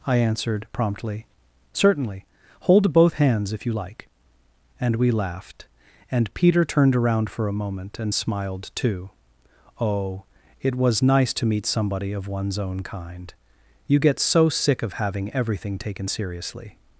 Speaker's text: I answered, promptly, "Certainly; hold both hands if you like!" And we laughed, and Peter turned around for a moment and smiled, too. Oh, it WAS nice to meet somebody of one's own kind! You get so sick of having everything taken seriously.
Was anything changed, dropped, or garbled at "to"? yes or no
no